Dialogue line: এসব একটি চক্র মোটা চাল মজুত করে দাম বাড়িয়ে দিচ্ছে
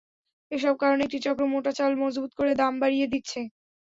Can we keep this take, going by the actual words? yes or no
no